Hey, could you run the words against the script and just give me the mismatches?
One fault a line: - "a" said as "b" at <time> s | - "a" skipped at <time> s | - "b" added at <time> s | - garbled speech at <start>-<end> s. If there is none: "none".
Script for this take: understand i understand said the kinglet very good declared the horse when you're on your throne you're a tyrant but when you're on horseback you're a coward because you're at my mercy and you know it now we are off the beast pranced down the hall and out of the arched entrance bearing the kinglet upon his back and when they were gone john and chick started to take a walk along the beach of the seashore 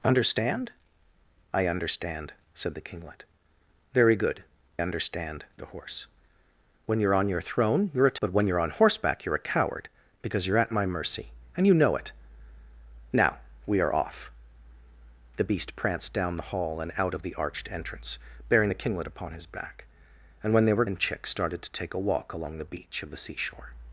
- "declared" said as "understand" at 4.8 s
- "tyrant" skipped at 8.2 s
- "gone john" skipped at 20.8 s